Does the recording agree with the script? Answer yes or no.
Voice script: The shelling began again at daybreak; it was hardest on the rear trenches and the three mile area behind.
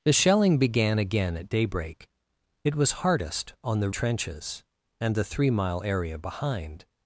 no